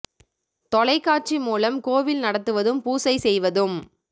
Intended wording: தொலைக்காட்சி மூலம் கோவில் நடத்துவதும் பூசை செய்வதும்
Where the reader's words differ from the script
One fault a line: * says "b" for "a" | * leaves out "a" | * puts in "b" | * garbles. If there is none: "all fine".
all fine